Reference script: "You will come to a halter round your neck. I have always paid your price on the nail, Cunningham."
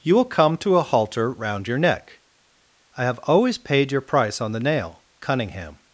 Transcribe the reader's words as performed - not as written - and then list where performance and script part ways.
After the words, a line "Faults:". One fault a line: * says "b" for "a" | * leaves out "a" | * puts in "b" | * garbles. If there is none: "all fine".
"You will come to a halter round your neck. I have always paid your price on the nail, Cunningham."
Faults:
all fine